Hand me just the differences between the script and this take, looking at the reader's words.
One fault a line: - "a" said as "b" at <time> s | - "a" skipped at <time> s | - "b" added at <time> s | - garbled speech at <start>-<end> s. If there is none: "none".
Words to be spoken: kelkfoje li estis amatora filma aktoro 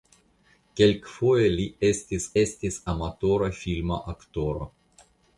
- "estis" added at 2.4 s